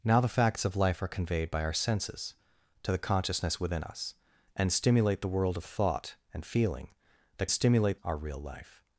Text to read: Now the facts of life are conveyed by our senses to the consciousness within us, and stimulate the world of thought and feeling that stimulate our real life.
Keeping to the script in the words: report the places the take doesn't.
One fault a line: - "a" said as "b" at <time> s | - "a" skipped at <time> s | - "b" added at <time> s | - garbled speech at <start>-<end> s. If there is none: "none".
none